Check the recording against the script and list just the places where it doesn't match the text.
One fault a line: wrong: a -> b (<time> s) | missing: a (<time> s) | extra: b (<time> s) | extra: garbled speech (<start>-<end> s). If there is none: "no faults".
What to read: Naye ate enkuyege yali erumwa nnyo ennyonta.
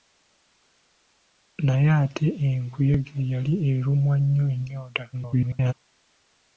extra: garbled speech (5.1-5.7 s)